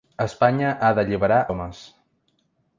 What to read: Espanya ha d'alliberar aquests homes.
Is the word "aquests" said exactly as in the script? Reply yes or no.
no